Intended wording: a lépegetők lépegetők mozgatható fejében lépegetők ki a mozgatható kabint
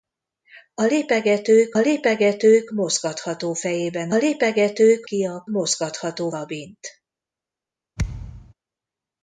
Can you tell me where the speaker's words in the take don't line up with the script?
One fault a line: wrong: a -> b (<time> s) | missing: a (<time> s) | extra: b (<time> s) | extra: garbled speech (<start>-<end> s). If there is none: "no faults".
no faults